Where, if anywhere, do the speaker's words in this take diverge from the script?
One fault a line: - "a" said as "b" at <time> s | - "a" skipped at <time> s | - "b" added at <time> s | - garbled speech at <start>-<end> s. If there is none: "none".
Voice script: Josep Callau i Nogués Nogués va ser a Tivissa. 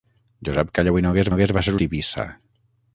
none